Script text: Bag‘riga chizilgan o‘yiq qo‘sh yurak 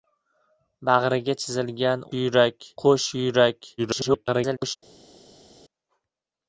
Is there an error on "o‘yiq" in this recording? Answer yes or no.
yes